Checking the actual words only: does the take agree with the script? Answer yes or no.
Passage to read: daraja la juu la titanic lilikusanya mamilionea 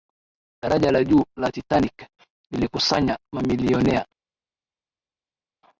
yes